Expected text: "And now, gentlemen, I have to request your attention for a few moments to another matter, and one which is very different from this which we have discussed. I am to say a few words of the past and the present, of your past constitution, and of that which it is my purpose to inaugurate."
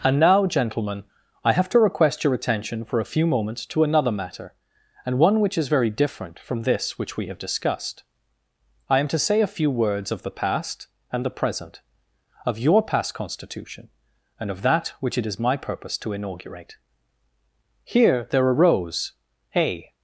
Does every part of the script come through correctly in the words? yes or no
no